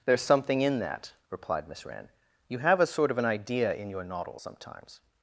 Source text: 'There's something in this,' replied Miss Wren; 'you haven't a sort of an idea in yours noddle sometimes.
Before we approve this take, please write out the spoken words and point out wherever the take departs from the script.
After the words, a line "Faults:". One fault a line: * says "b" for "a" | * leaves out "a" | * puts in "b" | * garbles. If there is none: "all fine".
'There's something in that,' replied Miss Wren; 'you have a sort of an idea in your noddle sometimes.
Faults:
* says "that" for "this"
* says "have" for "haven't"
* says "your" for "yours"